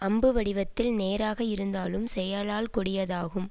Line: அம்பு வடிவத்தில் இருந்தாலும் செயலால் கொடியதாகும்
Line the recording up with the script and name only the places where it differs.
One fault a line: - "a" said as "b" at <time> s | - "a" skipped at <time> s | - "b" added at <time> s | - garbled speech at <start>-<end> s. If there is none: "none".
- "நேராக" added at 0.9 s